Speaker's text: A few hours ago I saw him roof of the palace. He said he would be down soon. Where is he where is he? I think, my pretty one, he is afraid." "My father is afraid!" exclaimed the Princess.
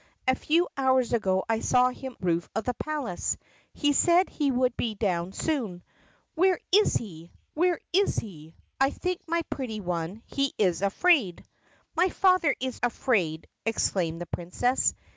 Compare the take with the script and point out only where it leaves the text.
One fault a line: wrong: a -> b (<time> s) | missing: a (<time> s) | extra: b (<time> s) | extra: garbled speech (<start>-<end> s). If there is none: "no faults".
no faults